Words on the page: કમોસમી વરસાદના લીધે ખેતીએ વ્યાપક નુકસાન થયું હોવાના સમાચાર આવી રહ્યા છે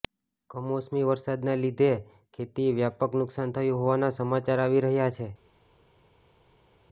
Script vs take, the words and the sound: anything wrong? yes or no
no